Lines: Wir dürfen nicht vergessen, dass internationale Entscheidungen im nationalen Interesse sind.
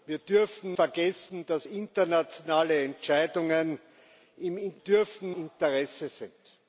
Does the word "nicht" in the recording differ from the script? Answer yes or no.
yes